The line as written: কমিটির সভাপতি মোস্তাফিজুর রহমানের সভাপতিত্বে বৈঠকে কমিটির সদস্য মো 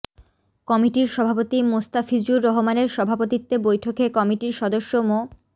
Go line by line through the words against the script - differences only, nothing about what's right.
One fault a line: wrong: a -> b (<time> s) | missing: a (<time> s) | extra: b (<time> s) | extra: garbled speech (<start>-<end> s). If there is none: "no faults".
no faults